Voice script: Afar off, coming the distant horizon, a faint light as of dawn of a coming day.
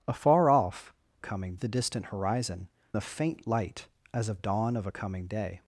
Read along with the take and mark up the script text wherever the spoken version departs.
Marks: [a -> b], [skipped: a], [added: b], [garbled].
Afar off, coming the distant horizon, a faint light as of dawn of a coming day.